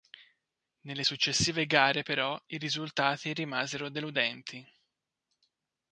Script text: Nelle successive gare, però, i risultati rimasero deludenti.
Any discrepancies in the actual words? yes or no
no